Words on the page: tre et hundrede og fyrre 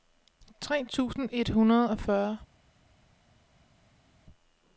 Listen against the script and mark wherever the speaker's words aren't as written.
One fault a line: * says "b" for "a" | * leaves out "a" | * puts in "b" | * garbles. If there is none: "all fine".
* puts in "tusind"